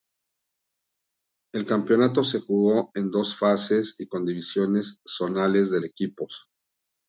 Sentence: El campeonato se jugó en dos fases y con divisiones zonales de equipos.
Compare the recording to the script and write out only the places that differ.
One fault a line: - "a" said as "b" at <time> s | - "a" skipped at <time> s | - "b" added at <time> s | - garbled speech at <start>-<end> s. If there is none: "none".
none